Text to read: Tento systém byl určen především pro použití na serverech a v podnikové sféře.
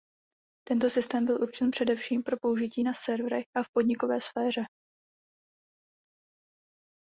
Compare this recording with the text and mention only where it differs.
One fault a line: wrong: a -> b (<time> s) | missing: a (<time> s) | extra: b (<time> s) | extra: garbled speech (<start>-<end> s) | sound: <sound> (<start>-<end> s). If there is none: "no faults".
no faults